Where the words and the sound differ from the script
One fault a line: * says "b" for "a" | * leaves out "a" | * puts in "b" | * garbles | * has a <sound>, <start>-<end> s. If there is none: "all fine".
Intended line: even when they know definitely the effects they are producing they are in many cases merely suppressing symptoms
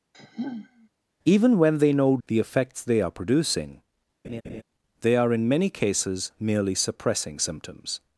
* has a sigh, 0.1-0.9 s
* leaves out "definitely"
* has a laugh, 4.2-4.6 s